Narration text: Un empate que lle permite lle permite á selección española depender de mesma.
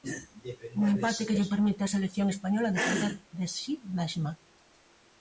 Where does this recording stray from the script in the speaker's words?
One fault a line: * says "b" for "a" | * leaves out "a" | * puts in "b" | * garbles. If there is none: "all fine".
* leaves out "lle permite"
* puts in "si"